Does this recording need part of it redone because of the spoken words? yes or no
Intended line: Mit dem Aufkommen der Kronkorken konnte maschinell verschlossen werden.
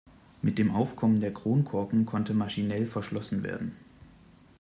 no